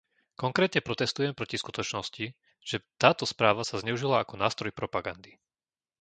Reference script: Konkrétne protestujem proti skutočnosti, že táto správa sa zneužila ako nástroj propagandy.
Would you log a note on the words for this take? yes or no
no